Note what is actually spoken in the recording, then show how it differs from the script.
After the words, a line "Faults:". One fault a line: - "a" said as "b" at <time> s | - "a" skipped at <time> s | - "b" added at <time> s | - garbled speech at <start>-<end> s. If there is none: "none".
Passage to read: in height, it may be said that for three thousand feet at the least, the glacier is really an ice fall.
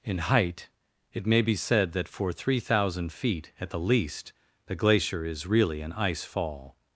in height, it may be said that for three thousand feet at the least, the glacier is really an ice fall.
Faults:
none